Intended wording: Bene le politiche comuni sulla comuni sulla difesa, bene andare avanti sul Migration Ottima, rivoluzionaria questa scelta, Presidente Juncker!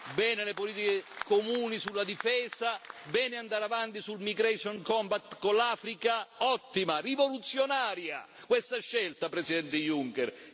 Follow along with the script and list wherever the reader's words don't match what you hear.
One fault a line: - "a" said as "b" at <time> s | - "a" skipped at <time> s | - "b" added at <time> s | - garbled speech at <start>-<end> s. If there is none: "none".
- "comuni sulla" skipped at 2.0 s
- "Compact con l'Africa" added at 4.8 s